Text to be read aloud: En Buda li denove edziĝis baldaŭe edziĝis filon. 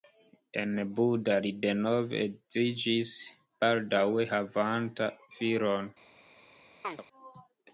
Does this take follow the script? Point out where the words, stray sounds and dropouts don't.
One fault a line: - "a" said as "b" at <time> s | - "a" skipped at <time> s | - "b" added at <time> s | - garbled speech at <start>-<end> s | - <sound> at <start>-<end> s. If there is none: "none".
- "edziĝis" said as "havanta" at 4.3 s
- chirp at 6.8-7.0 s